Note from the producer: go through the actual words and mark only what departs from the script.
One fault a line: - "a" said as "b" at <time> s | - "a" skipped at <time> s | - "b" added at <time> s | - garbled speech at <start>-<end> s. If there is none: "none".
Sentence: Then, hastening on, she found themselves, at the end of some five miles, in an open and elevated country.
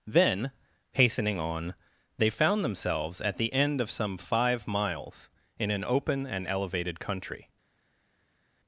- "she" said as "they" at 2.2 s